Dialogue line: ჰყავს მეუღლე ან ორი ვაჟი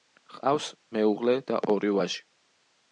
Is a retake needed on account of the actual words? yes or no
yes